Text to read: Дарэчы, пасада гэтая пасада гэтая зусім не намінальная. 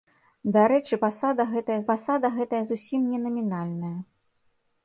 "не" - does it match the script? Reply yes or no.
yes